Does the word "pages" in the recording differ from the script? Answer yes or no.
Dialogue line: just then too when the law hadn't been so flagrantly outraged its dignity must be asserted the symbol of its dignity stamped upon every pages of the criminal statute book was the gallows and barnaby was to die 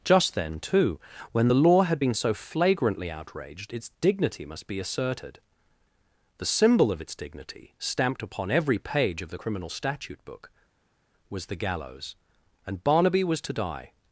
yes